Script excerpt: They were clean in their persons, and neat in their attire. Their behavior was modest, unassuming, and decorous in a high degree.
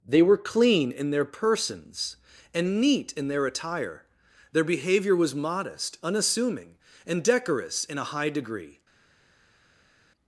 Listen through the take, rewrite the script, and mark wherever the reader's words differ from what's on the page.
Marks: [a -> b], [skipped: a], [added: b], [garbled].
They were clean in their persons, and neat in their attire. Their behavior was modest, unassuming, and decorous in a high degree.